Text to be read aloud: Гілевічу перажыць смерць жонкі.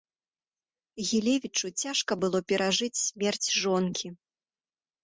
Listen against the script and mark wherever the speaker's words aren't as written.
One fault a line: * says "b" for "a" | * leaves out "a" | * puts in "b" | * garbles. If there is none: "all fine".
* puts in "цяжка было"